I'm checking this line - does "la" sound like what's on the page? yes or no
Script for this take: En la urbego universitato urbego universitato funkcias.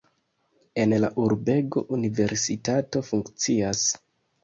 yes